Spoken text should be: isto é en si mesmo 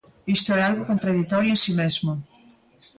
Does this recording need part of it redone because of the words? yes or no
yes